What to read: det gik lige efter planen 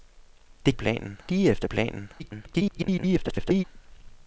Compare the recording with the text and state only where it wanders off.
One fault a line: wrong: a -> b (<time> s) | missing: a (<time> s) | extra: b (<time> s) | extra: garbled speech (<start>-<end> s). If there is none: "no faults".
wrong: gik -> planen (0.7 s)
extra: garbled speech (2.2-3.6 s)